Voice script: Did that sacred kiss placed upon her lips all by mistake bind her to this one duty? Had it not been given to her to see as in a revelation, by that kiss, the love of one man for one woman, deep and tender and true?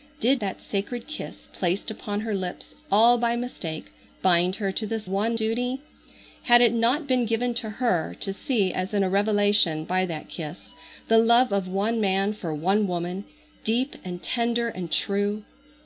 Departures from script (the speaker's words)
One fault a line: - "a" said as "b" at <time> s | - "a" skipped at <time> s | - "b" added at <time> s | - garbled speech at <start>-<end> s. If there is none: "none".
none